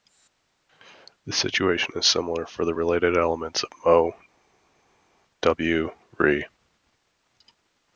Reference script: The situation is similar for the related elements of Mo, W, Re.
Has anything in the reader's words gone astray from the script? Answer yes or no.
no